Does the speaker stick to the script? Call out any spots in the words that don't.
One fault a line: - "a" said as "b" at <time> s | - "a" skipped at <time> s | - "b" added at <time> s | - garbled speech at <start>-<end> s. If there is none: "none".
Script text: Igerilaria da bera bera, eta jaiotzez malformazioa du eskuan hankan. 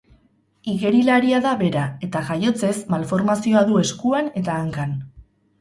- "bera" skipped at 1.8 s
- "eta" added at 4.4 s